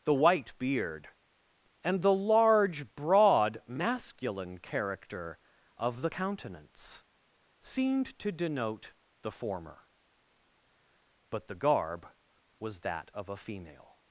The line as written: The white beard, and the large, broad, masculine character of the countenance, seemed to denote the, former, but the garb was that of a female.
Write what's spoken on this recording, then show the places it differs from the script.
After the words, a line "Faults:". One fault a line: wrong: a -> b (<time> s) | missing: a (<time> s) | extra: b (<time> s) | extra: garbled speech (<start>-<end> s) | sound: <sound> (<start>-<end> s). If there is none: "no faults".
The white beard, and the large, broad, masculine character of the countenance, seemed to denote the, former, but the garb was that of a female.
Faults:
no faults